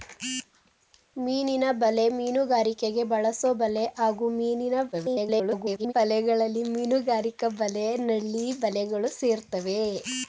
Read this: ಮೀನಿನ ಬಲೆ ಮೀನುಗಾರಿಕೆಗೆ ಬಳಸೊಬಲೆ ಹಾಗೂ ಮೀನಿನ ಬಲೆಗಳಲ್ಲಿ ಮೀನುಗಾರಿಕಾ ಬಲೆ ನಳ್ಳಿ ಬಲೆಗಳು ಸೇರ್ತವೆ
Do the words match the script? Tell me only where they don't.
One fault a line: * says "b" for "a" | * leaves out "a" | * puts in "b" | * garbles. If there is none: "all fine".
* garbles